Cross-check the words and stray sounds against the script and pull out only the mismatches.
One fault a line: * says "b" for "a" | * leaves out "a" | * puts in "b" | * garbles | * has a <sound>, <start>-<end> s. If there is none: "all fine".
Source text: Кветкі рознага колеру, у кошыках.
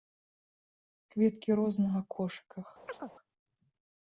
* leaves out "колеру у"
* has a chirp, 2.9-3.1 s